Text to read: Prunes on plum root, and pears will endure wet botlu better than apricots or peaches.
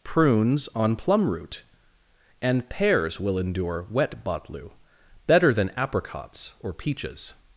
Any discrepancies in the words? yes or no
no